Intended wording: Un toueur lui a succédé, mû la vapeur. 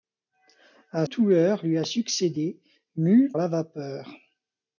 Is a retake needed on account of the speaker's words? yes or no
no